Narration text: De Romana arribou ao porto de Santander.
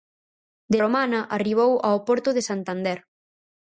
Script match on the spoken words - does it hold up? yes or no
yes